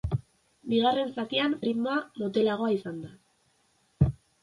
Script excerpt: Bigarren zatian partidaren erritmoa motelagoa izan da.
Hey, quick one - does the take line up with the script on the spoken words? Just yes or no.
no